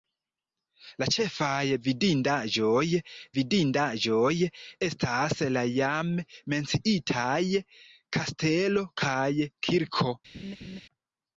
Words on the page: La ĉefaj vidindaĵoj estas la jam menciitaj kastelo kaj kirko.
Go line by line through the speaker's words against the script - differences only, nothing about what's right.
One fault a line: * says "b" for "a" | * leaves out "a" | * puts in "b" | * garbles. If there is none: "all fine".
* puts in "vidindaĵoj"